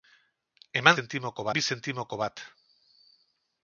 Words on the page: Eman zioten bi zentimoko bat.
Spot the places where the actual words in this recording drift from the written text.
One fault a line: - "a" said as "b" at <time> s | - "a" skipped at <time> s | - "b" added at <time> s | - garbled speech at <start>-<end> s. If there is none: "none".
- "zioten" said as "zentimoko" at 1.0 s